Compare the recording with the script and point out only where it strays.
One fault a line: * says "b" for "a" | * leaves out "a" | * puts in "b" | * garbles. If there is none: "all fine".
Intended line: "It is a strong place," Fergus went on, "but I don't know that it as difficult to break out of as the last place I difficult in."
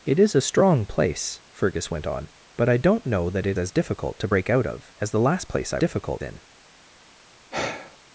all fine